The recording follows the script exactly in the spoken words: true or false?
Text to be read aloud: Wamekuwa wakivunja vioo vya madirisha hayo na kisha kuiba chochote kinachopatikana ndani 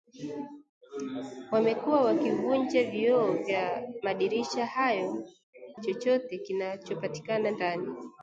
false